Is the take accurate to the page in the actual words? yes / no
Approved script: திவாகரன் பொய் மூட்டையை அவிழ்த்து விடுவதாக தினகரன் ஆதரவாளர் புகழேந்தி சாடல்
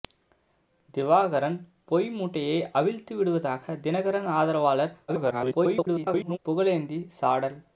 no